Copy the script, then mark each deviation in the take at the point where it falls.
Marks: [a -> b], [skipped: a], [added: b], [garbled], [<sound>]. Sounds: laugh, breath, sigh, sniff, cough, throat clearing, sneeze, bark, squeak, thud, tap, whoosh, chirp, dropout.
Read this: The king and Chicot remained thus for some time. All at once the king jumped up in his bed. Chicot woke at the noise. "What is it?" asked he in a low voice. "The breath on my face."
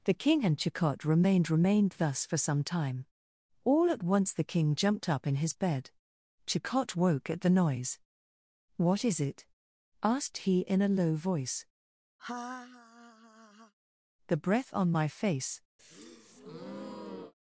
The king and Chicot remained [added: remained] thus for some time. All at once the king jumped up in his bed. Chicot woke at the noise. "What is it?" asked he in a low voice. [laugh] "The breath on my face." [breath]